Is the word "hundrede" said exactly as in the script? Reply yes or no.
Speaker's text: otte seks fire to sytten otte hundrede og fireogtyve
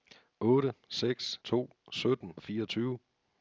no